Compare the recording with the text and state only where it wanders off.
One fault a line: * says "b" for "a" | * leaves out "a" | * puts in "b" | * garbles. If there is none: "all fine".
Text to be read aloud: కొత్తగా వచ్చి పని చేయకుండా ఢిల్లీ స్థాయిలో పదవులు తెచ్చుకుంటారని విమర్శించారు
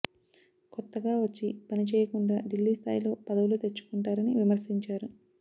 all fine